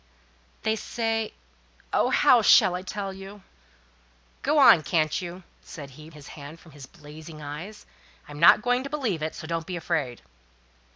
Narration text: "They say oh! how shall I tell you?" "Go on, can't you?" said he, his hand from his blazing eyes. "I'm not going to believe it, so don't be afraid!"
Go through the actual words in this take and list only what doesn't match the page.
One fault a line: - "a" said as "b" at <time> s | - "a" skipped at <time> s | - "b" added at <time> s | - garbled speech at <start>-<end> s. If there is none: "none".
none